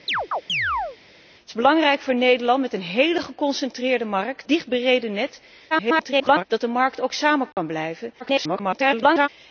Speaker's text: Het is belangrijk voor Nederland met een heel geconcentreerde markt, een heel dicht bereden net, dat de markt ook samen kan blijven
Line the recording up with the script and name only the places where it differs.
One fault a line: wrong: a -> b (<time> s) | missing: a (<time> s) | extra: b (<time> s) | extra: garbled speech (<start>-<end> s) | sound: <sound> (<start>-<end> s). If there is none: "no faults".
sound: chirp (0.1-1.0 s)
missing: een heel (4.5 s)
extra: garbled speech (5.7-6.4 s)
sound: dropout (7.5-7.6 s)
extra: garbled speech (8.2-9.3 s)